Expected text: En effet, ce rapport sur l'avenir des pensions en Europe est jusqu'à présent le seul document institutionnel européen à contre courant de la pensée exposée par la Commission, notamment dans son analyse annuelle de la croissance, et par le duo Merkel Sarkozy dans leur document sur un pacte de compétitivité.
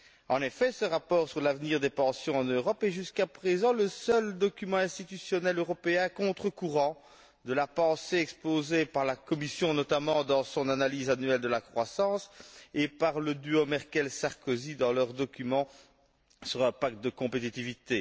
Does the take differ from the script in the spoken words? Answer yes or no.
no